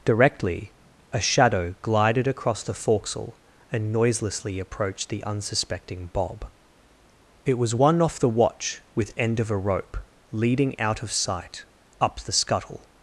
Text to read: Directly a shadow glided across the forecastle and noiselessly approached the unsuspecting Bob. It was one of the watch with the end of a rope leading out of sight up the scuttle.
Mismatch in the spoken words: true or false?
true